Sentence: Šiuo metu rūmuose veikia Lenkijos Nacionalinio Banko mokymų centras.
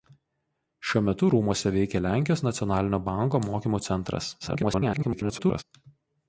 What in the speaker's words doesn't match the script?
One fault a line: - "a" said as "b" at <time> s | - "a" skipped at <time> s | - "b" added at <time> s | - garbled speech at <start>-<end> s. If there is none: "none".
- garbled speech at 4.4-5.6 s